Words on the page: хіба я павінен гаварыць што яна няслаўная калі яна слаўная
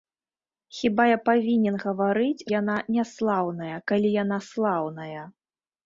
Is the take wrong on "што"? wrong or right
wrong